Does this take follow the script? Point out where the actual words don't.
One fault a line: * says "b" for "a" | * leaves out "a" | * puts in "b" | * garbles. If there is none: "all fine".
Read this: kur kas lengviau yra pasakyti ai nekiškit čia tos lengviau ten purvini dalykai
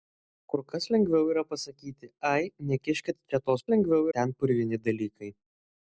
all fine